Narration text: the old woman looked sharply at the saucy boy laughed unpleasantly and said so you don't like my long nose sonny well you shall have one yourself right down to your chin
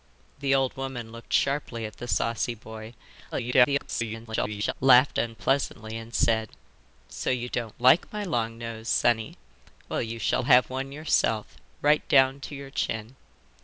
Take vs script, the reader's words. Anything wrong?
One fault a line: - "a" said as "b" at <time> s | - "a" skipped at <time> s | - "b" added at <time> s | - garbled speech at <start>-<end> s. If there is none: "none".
- garbled speech at 3.3-4.7 s